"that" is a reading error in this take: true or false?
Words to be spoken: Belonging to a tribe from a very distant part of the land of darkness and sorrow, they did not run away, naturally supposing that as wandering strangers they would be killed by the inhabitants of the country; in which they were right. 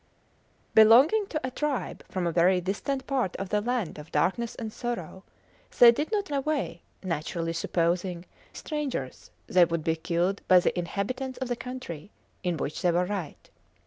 true